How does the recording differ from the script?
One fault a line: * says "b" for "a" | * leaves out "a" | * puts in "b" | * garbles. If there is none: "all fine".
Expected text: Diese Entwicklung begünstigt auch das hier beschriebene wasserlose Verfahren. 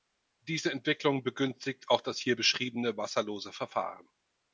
all fine